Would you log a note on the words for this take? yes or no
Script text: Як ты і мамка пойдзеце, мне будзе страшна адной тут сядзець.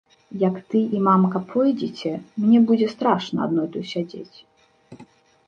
no